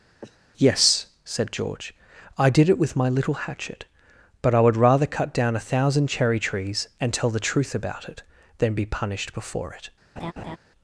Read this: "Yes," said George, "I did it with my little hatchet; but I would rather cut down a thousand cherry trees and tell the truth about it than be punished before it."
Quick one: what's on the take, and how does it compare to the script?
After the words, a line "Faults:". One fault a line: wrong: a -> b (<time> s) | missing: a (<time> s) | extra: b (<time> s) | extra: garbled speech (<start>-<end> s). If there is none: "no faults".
"Yes," said George, "I did it with my little hatchet; but I would rather cut down a thousand cherry trees and tell the truth about it than be punished before it."
Faults:
no faults